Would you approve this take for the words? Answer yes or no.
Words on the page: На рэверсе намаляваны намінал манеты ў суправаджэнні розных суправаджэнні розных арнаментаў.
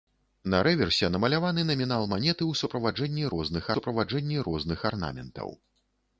yes